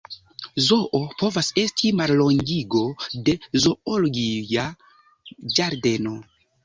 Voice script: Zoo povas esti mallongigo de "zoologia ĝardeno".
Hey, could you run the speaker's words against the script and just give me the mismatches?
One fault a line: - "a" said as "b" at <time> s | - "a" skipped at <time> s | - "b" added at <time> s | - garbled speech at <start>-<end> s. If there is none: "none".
none